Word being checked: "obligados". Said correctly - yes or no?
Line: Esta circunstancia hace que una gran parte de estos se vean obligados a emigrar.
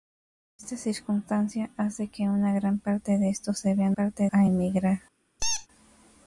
no